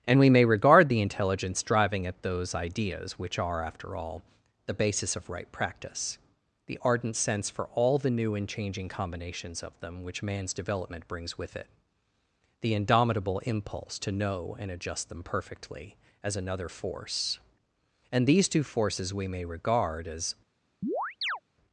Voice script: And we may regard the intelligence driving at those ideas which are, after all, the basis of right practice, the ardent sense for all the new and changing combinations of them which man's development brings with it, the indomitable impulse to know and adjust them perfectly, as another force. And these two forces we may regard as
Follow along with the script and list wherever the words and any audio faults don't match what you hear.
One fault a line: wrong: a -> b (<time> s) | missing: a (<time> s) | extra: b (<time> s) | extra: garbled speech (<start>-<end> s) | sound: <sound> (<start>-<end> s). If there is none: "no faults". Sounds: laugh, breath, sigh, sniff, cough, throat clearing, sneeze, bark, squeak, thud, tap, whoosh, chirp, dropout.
sound: chirp (20.8-21.4 s)